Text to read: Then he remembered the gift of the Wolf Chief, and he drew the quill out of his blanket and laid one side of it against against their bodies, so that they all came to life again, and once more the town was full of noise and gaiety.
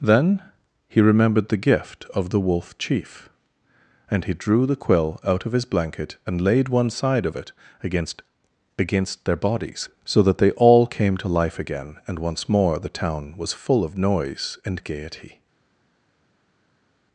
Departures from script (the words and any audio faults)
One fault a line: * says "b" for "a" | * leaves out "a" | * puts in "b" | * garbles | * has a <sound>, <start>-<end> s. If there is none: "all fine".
all fine